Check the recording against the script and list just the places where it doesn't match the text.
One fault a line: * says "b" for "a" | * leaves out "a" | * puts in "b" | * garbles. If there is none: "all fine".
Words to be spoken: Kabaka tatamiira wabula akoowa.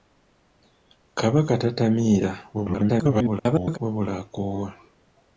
* garbles